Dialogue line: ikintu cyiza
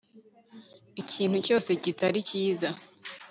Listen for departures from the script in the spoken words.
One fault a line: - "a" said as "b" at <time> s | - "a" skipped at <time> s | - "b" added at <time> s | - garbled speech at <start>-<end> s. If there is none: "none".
- "cyose kitari" added at 1.5 s